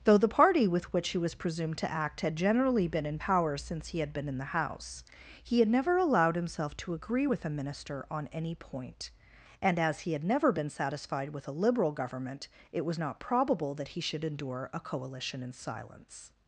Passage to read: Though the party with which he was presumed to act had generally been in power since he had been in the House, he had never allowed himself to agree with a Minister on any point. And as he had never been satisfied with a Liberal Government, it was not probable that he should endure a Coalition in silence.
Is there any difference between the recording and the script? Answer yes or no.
no